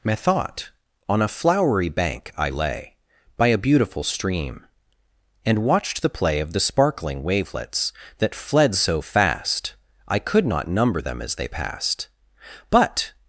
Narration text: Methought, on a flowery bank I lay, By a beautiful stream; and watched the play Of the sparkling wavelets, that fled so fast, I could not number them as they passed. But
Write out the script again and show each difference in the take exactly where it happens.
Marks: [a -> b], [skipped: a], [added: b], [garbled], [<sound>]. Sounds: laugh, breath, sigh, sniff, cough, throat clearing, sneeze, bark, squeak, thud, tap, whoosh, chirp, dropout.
Methought, on a flowery bank I lay, By a beautiful stream; and watched the play Of the sparkling wavelets, that fled so fast, I could not number them as they passed. But